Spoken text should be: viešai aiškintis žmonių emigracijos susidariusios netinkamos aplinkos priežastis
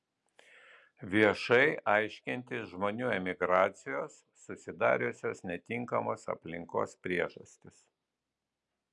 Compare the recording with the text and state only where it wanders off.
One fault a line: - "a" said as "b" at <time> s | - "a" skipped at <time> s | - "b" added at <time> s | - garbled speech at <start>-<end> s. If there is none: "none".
none